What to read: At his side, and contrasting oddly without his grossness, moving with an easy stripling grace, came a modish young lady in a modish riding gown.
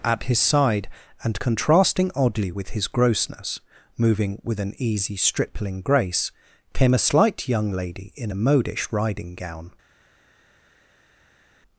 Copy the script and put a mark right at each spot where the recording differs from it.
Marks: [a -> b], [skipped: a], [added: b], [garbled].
At his side, and contrasting oddly [without -> with] his grossness, moving with an easy stripling grace, came a [modish -> slight] young lady in a modish riding gown.